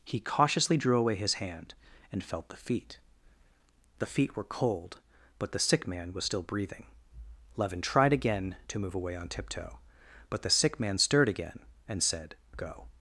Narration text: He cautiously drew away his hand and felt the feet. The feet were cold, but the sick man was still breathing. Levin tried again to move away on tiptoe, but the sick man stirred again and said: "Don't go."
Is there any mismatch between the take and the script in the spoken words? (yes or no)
yes